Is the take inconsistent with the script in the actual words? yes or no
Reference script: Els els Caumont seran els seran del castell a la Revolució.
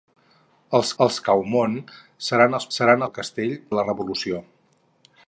no